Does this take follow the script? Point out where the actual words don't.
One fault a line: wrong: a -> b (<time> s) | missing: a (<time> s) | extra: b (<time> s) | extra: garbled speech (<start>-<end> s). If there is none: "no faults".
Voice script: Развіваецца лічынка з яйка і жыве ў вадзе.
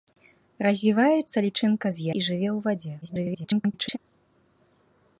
missing: яйка (2.1 s)
extra: garbled speech (3.0-4.0 s)